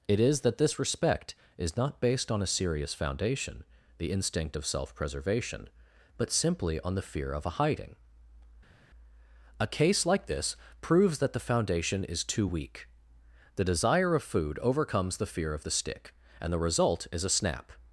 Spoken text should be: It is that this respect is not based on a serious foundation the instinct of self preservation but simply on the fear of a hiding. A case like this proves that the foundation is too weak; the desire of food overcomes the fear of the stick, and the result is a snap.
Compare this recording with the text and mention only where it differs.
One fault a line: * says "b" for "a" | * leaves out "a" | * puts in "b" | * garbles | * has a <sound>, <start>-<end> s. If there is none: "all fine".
all fine